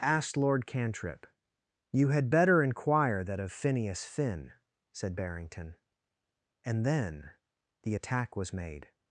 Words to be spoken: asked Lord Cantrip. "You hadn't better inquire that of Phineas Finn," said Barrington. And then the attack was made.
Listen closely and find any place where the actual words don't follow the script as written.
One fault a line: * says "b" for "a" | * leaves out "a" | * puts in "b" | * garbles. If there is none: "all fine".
* says "had" for "hadn't"